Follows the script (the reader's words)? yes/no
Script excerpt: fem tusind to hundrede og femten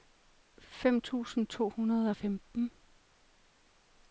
yes